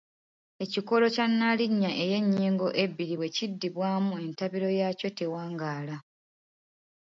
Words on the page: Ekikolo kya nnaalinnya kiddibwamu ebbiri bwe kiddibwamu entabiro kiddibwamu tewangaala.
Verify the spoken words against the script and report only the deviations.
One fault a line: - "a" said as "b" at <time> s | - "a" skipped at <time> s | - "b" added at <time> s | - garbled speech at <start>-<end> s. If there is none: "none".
- "kiddibwamu" said as "ey'ennyingo" at 2.0 s
- "kiddibwamu" said as "yaakyo" at 4.8 s